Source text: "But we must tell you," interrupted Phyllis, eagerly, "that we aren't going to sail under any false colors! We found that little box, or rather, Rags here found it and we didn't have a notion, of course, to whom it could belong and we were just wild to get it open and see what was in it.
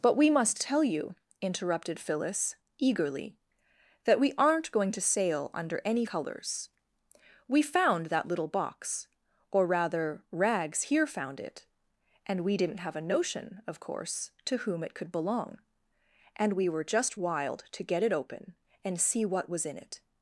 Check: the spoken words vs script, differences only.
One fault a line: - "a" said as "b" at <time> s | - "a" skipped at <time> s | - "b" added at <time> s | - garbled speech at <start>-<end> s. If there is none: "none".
- "false" skipped at 6.0 s